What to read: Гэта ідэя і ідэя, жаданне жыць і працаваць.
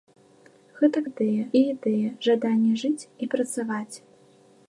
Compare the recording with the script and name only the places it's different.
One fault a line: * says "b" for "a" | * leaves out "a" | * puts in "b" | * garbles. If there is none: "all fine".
all fine